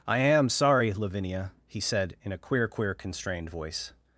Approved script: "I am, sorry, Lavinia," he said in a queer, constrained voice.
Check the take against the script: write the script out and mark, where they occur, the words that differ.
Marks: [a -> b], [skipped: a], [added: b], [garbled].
"I am, sorry, Lavinia," he said in a queer, [added: queer] constrained voice.